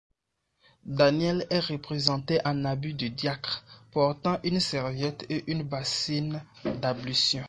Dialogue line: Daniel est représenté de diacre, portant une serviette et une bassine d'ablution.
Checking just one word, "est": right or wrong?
right